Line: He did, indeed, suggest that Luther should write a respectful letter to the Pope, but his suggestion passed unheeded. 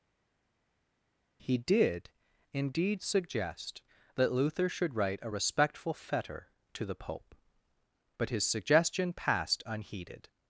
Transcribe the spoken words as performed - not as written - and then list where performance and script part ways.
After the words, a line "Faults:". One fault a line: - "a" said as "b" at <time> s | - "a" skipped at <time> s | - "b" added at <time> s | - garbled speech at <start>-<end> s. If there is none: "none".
He did, indeed, suggest that Luther should write a respectful fetter to the Pope, but his suggestion passed unheeded.
Faults:
- "letter" said as "fetter" at 5.9 s